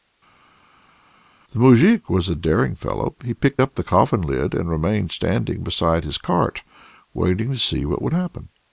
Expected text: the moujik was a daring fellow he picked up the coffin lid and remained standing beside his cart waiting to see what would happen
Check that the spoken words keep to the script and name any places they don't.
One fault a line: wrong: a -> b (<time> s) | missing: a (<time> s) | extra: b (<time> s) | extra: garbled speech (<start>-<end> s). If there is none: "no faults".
no faults